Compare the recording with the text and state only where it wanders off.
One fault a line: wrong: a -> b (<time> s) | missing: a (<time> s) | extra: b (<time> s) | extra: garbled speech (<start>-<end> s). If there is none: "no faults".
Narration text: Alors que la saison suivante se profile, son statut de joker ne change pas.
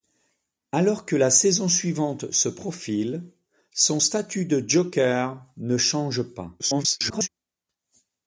extra: garbled speech (6.6-7.3 s)